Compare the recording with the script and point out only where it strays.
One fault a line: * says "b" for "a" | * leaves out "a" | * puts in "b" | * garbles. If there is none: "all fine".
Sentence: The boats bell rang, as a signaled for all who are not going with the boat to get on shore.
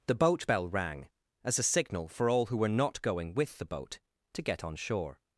* says "boat" for "boats"
* says "signal" for "signaled"
* says "were" for "are"